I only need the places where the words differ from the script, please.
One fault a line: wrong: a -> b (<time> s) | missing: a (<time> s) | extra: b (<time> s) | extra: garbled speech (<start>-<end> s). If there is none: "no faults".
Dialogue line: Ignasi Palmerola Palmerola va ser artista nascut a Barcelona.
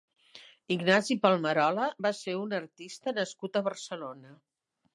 missing: Palmerola (1.9 s)
extra: un (2.4 s)